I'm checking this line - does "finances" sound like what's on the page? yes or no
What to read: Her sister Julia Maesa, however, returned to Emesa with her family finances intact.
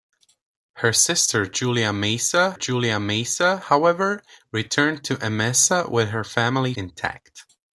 no